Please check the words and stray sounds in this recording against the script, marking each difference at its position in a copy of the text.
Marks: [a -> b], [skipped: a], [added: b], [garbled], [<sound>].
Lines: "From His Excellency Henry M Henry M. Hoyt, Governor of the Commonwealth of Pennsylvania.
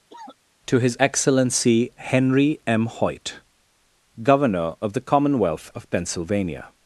[cough] ["From -> To] His Excellency Henry M [skipped: Henry M.] Hoyt, Governor of the Commonwealth of Pennsylvania.